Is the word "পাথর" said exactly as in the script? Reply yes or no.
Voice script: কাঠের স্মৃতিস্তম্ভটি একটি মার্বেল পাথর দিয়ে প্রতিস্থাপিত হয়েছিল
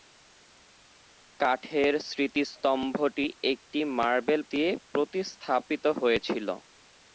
no